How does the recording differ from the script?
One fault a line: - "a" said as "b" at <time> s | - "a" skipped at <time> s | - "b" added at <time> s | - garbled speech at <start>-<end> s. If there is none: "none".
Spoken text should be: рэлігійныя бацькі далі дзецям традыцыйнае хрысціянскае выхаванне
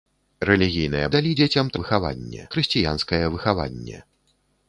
- "бацькі" skipped at 1.1 s
- "традыцыйнае" said as "выхаванне" at 1.8 s